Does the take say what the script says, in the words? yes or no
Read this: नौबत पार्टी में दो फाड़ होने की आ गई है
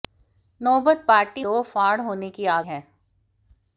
no